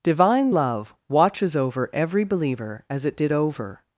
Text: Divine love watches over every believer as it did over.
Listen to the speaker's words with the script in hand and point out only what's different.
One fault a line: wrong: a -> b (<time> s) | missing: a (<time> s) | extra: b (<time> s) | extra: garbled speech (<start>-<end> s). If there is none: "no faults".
no faults